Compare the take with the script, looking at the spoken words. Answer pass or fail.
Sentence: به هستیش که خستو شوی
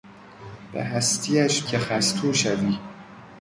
pass